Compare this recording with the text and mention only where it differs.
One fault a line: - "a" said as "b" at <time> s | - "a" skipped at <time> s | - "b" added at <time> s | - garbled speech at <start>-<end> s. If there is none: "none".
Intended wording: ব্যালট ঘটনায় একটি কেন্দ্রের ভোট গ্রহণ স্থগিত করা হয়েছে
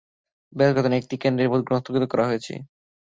none